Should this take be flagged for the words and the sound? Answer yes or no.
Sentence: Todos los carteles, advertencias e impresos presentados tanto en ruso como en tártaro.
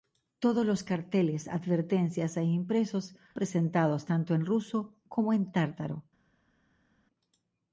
no